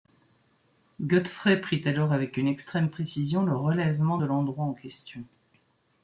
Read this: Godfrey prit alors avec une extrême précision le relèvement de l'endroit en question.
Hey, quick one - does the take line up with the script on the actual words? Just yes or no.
yes